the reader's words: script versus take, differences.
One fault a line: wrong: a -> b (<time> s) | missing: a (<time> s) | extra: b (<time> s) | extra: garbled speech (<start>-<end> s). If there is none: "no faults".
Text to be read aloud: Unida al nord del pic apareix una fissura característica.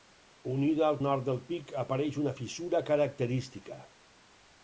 no faults